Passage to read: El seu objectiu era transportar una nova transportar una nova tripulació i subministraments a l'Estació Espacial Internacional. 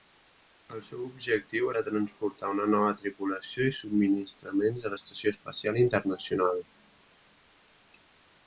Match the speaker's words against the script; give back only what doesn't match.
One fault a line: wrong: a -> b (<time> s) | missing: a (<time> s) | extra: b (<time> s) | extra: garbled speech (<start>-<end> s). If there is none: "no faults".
missing: transportar una nova (2.9 s)